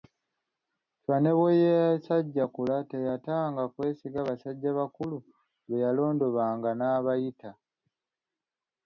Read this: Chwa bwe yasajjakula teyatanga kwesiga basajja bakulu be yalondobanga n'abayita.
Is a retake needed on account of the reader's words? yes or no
yes